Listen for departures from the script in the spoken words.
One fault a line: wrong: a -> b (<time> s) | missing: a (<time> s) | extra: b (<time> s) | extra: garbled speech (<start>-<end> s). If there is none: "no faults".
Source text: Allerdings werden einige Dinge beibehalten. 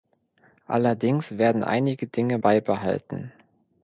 no faults